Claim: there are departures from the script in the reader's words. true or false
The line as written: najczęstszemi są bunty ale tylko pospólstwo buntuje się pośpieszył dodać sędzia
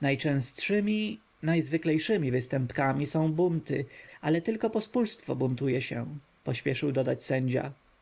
true